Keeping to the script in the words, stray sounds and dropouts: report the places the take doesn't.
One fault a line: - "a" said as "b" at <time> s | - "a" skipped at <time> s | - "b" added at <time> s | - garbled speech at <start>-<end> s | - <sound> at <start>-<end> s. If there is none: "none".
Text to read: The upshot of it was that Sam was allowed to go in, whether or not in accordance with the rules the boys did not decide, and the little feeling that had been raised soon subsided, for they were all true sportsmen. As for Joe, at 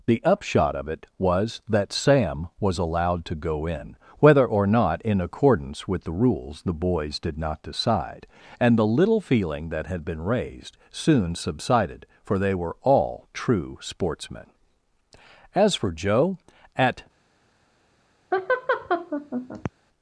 - laugh at 18.3-19.7 s